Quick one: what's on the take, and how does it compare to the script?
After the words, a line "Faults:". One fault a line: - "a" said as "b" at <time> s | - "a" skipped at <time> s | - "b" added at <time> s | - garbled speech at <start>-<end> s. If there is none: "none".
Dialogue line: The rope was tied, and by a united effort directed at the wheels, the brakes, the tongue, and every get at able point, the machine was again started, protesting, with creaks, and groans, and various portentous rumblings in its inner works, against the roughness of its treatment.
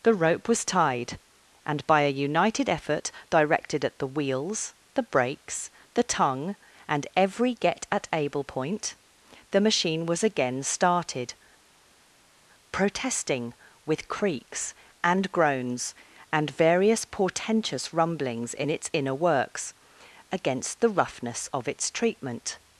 The rope was tied, and by a united effort directed at the wheels, the brakes, the tongue, and every get at able point, the machine was again started, protesting, with creaks, and groans, and various portentous rumblings in its inner works, against the roughness of its treatment.
Faults:
none